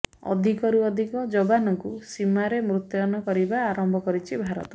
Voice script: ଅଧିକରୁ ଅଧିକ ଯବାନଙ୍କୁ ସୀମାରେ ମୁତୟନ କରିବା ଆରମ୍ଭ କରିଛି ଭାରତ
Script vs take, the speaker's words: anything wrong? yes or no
no